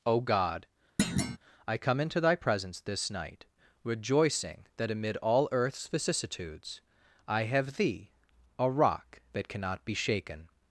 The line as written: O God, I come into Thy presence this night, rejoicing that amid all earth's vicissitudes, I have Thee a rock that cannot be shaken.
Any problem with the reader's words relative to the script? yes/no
no